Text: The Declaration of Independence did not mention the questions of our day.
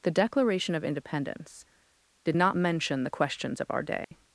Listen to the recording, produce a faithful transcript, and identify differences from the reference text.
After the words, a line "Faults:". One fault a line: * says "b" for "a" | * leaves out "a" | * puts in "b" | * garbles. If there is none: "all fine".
The Declaration of Independence did not mention the questions of our day.
Faults:
all fine